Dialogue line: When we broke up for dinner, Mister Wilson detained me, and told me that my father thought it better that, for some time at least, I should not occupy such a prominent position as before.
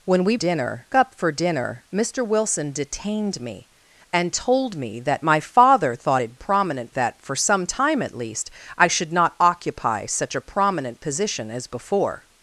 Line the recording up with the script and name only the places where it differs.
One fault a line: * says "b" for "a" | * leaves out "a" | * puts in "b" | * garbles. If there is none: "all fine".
* says "dinner" for "broke"
* says "prominent" for "better"